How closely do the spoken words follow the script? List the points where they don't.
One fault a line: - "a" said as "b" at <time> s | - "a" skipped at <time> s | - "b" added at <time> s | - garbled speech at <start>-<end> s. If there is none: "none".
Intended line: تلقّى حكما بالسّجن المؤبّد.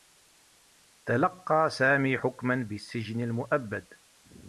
- "سامي" added at 1.7 s